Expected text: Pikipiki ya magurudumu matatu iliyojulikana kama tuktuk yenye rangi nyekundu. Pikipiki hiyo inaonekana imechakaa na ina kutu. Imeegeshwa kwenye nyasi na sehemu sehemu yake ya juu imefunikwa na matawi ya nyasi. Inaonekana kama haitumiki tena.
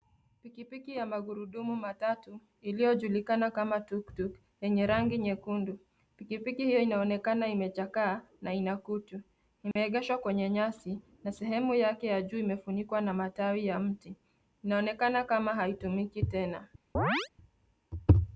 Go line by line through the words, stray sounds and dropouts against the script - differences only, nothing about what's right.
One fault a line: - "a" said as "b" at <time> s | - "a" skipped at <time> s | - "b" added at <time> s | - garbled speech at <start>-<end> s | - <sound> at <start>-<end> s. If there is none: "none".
- dropout at 9.7-9.8 s
- "sehemu" skipped at 11.7 s
- "nyasi" said as "mti" at 13.8 s
- chirp at 16.9-17.3 s